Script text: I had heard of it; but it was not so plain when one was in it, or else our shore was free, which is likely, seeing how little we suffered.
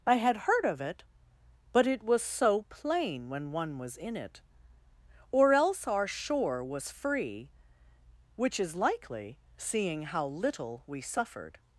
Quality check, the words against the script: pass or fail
fail